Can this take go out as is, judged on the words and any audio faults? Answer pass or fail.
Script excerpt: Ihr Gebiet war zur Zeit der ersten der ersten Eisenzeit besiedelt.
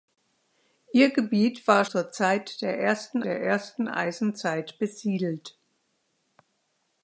pass